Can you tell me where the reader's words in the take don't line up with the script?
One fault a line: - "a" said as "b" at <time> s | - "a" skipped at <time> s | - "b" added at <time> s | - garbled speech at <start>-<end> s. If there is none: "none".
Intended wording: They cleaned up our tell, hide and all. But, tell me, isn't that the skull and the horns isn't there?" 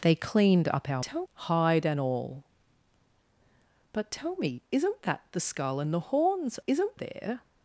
none